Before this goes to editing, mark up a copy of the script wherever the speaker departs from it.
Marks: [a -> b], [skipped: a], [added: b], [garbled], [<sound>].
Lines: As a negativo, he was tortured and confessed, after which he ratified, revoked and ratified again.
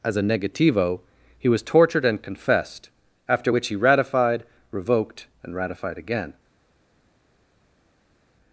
As a negativo, he was tortured and confessed, after which he ratified, revoked and ratified again.